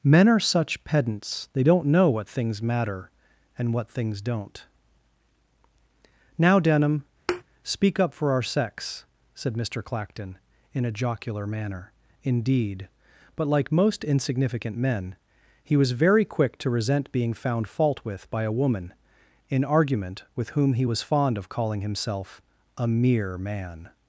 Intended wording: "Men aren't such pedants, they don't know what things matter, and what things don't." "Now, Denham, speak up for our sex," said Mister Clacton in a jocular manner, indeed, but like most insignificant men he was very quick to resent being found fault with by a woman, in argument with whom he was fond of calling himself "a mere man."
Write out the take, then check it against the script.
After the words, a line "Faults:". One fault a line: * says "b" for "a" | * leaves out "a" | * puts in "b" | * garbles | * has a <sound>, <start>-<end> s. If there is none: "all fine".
"Men are such pedants, they don't know what things matter, and what things don't." "Now, Denham, speak up for our sex," said Mister Clacton in a jocular manner, indeed, but like most insignificant men he was very quick to resent being found fault with by a woman, in argument with whom he was fond of calling himself "a mere man."
Faults:
* says "are" for "aren't"
* has a thud, 7.3-7.4 s